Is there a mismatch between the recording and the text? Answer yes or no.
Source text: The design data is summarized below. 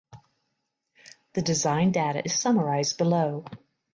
no